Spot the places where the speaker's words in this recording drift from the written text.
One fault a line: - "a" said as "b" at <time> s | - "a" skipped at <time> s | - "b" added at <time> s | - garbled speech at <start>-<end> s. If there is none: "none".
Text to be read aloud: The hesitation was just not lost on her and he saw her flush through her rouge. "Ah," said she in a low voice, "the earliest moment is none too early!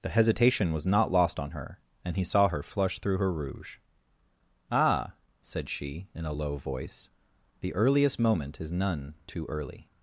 - "just" skipped at 0.8 s